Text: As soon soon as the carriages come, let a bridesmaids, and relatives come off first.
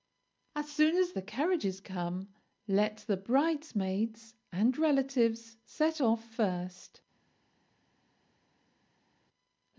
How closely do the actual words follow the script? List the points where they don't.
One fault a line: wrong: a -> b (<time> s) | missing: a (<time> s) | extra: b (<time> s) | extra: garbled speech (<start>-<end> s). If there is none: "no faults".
missing: soon (0.9 s)
wrong: a -> the (3.1 s)
wrong: come -> set (5.7 s)